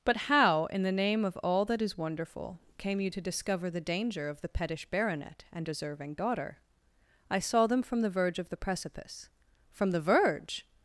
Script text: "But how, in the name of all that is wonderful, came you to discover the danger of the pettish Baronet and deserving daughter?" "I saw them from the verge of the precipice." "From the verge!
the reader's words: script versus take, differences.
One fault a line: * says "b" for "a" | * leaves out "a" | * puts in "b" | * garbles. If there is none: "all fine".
all fine